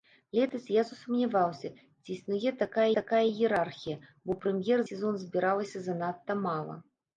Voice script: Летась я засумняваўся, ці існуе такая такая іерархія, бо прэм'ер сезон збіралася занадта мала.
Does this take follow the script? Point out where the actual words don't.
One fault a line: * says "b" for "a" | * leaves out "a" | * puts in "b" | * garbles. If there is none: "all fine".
all fine